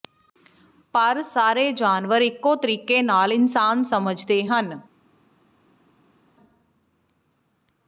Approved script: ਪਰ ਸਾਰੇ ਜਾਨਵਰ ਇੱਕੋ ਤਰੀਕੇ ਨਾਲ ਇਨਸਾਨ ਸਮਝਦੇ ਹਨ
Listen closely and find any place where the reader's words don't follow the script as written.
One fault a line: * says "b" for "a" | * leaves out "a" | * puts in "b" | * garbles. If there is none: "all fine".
all fine